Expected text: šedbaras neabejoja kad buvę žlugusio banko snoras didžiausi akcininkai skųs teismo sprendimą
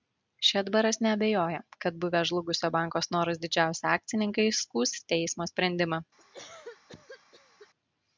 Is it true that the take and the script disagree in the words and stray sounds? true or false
true